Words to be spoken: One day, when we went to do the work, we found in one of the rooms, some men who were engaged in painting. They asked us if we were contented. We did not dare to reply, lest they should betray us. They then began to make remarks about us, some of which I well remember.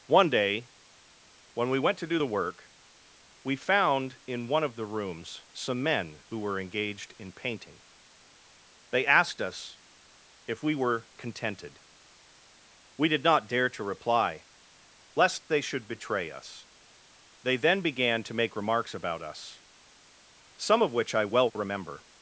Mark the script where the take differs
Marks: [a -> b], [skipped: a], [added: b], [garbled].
One day, when we went to do the work, we found in one of the rooms, some men who were engaged in painting. They asked us if we were contented. We did not dare to reply, lest they should betray us. They then began to make remarks about us, some of which I well remember.